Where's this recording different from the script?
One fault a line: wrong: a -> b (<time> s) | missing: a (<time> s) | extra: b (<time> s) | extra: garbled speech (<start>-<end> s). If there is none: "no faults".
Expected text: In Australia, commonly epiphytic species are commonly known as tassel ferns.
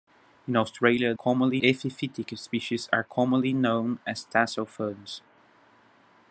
no faults